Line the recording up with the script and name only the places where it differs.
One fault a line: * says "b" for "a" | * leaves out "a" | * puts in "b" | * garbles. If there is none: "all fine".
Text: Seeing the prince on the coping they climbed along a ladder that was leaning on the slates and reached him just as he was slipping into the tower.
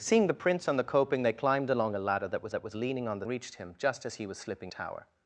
* puts in "that was"
* leaves out "slates and"
* leaves out "into the"